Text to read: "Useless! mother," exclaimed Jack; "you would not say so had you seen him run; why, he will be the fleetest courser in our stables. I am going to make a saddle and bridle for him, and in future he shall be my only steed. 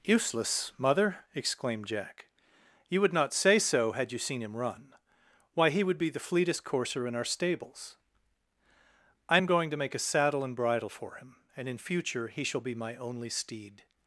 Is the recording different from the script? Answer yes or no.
yes